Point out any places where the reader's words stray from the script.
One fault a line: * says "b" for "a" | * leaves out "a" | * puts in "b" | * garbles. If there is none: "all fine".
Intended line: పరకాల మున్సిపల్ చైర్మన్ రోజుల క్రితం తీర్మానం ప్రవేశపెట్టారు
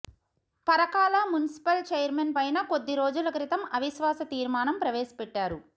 * puts in "పైన కొద్ది"
* puts in "అవిశ్వాస"